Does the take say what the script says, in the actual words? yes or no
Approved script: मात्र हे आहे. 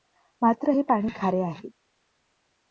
no